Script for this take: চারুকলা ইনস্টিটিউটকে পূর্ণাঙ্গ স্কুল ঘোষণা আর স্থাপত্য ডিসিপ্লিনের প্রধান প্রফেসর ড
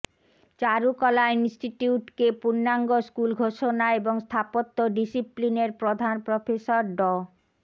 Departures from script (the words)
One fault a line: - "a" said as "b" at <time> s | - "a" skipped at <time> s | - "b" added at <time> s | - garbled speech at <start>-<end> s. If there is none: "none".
- "আর" said as "এবং" at 4.0 s